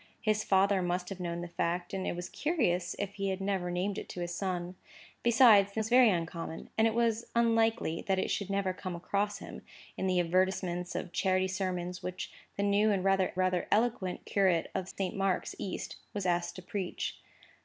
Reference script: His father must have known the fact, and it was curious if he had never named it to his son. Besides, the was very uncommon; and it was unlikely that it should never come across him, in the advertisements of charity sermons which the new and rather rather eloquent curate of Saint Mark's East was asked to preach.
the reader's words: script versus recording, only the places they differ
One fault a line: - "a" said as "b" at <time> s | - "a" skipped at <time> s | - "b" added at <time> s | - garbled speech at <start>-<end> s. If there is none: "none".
none